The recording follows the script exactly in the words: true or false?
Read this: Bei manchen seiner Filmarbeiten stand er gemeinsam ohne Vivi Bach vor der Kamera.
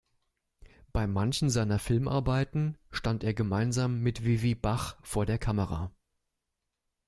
false